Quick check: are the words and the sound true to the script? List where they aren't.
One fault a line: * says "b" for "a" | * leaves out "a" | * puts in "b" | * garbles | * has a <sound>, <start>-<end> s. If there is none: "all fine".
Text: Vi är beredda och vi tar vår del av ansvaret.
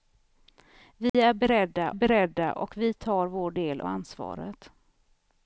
* has a dropout, 1.1-1.1 s
* puts in "beredda"
* leaves out "av"